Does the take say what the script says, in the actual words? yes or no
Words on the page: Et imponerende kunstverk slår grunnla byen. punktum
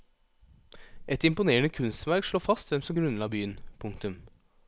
no